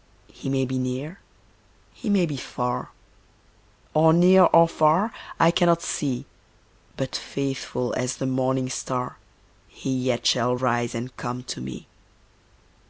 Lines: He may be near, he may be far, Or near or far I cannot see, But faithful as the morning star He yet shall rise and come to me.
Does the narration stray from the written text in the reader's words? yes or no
no